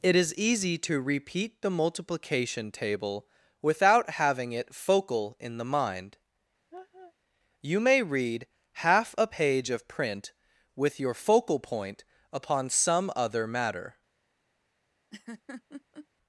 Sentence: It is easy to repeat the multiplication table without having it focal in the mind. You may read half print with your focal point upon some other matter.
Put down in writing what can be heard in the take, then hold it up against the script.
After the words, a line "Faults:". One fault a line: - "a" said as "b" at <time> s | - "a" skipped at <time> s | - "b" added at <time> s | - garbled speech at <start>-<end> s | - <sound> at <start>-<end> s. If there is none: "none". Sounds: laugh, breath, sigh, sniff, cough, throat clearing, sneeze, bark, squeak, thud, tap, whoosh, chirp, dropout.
It is easy to repeat the multiplication table without having it focal in the mind. You may read half a page of print with your focal point upon some other matter.
Faults:
- laugh at 6.7-7.1 s
- "a page of" added at 9.2 s
- laugh at 15.1-16.1 s